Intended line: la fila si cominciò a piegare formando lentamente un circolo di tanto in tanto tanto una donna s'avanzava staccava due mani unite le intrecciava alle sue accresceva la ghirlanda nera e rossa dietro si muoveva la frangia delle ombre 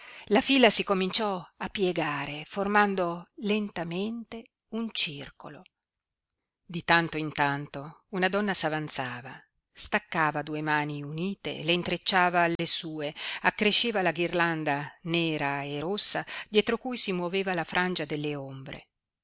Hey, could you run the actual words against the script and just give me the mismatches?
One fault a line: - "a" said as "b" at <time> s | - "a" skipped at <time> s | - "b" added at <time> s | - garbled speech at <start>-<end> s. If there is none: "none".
- "tanto" skipped at 8.0 s
- "cui" added at 16.8 s